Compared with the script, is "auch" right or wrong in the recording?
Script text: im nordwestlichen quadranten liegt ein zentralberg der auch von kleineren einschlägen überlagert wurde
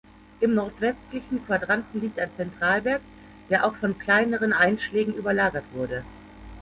right